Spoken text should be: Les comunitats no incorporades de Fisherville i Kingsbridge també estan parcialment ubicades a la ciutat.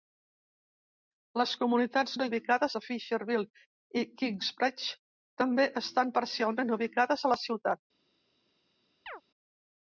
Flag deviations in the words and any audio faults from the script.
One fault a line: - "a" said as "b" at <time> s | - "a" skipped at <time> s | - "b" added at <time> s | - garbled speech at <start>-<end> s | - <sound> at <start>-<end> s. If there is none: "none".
- "incorporades" said as "ubicades" at 2.3 s
- chirp at 9.1-9.2 s